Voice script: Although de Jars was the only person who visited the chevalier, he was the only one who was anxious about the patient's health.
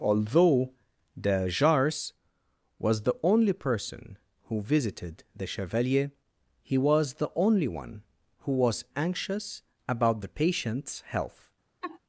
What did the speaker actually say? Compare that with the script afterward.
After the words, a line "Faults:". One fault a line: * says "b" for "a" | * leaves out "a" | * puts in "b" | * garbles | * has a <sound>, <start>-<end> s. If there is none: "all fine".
Although de Jars was the only person who visited the chevalier, he was the only one who was anxious about the patient's health.
Faults:
* has a laugh, 11.8-12.0 s